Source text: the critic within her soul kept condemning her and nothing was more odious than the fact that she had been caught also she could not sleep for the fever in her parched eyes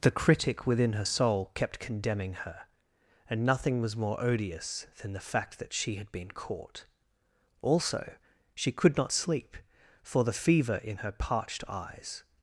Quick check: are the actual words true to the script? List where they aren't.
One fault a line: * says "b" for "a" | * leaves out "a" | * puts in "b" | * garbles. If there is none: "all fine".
all fine